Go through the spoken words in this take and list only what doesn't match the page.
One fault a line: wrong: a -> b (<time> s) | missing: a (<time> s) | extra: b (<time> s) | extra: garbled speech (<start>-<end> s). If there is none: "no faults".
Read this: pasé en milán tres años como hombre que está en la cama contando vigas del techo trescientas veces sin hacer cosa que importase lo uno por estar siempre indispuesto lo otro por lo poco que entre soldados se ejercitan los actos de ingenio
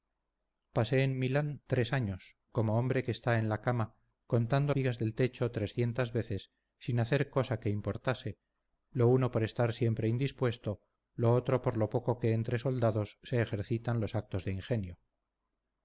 no faults